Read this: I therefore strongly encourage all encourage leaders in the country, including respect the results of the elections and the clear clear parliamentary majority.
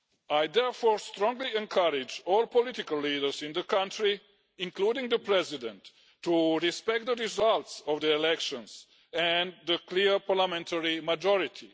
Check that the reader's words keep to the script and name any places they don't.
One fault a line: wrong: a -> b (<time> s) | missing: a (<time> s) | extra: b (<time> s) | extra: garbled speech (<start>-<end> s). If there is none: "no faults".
wrong: encourage -> political (2.5 s)
extra: the president to (5.1 s)
missing: clear (10.2 s)